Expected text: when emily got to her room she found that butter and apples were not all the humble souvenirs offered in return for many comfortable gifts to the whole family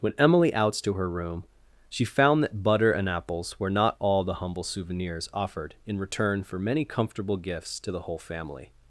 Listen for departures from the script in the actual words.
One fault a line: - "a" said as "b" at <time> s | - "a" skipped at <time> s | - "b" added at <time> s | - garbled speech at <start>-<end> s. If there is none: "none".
- "got" said as "outs" at 0.6 s